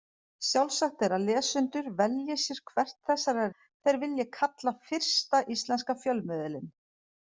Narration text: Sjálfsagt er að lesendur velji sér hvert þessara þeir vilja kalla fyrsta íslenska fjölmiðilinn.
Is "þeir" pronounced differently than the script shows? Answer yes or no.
no